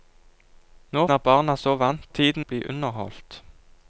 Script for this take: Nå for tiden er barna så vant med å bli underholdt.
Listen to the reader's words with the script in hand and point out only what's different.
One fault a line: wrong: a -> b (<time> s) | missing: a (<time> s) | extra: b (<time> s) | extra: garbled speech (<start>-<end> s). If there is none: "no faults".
missing: for tiden (1.1 s)
wrong: med -> tiden (2.1 s)